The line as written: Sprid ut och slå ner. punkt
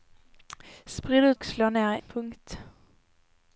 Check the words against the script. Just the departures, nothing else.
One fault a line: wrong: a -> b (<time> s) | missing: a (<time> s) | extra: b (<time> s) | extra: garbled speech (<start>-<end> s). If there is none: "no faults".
no faults